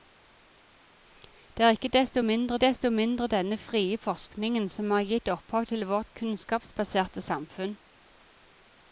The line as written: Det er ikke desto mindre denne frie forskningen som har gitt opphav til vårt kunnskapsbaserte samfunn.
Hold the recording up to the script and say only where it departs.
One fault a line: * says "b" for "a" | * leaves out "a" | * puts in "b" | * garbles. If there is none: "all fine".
* puts in "desto mindre"